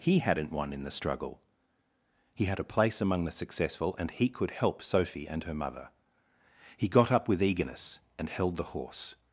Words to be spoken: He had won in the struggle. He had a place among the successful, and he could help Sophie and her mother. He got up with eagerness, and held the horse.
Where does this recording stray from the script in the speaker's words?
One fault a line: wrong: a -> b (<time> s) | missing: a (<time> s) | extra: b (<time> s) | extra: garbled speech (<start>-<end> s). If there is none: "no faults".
wrong: had -> hadn't (0.2 s)